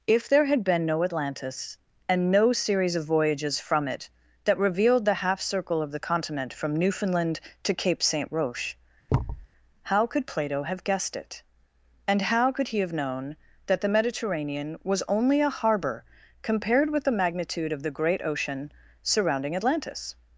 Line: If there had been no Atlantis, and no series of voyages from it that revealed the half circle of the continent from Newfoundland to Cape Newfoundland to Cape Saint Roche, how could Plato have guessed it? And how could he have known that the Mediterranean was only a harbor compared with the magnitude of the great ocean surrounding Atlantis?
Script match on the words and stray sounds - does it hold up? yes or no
no